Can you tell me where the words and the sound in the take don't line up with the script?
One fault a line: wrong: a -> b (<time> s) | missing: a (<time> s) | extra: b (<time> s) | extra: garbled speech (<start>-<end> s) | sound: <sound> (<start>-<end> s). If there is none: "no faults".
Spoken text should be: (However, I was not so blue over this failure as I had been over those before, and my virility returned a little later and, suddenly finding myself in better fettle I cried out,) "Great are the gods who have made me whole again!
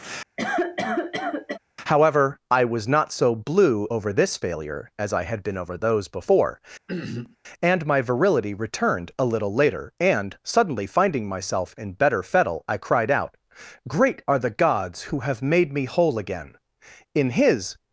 sound: cough (0.4-1.6 s)
sound: throat clearing (6.9-7.4 s)
extra: In his (17.1 s)